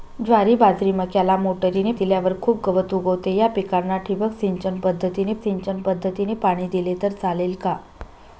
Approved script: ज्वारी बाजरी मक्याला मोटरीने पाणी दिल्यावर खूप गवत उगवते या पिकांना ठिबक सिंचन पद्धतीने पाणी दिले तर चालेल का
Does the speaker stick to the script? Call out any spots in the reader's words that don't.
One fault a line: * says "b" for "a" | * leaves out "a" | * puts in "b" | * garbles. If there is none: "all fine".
* leaves out "पाणी"
* puts in "सिंचन पद्धतीने"